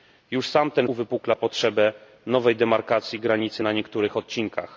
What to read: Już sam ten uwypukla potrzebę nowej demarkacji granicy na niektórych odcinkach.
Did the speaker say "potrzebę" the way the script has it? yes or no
yes